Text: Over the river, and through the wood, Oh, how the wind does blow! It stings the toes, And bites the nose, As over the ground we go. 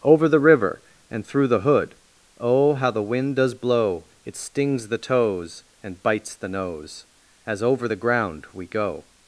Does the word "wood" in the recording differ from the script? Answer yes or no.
yes